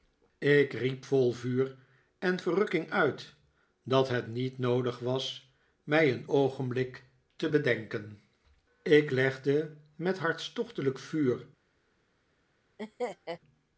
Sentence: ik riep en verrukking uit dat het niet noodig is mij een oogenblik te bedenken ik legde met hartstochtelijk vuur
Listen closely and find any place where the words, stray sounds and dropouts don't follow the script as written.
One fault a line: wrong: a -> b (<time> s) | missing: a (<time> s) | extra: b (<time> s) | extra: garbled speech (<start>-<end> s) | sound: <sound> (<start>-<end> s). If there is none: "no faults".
extra: vol vuur (1.1 s)
wrong: is -> was (5.0 s)
sound: laugh (12.8-13.4 s)